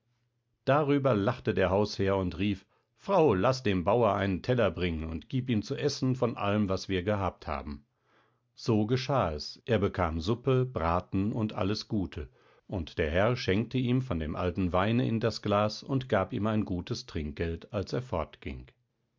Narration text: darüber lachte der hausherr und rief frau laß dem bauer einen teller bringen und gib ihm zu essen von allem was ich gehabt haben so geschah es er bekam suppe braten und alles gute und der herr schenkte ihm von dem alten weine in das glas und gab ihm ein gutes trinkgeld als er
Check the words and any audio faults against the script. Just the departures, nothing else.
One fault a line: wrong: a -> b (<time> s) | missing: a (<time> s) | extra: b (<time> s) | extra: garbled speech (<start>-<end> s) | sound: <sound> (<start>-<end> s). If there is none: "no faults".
wrong: ich -> wir (6.9 s)